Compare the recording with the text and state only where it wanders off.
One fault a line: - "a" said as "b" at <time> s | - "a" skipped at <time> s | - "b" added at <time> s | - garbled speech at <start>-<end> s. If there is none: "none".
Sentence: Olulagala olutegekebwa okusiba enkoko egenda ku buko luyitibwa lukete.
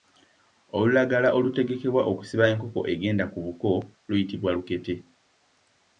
none